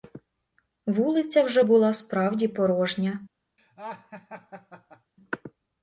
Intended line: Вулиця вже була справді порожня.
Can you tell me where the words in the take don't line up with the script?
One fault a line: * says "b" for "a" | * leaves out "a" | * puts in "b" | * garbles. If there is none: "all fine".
all fine